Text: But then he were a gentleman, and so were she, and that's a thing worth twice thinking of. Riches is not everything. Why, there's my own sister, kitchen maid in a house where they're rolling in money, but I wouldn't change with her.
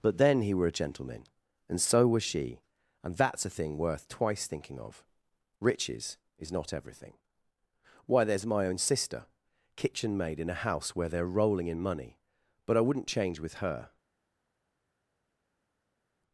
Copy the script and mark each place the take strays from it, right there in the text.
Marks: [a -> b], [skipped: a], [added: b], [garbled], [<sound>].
But then he were a gentleman, and so [were -> was] she, and that's a thing worth twice thinking of. Riches is not everything. Why, there's my own sister, kitchen maid in a house where they're rolling in money, but I wouldn't change with her.